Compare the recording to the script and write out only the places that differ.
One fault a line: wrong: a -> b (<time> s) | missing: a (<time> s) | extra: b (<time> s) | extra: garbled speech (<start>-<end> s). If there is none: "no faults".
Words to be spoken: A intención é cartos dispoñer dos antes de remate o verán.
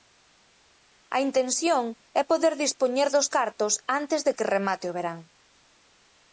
wrong: cartos -> poder (2.3 s)
extra: cartos (3.4 s)
extra: que (4.4 s)